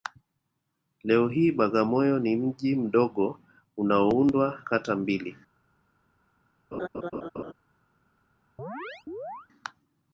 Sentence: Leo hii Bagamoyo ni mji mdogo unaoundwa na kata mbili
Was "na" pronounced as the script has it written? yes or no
no